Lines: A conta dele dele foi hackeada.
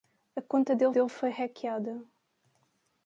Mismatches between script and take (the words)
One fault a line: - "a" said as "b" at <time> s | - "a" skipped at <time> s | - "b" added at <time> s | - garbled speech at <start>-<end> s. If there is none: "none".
none